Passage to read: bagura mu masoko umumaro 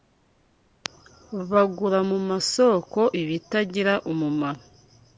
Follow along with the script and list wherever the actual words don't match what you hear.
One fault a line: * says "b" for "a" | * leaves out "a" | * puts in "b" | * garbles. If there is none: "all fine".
* puts in "ibitagira"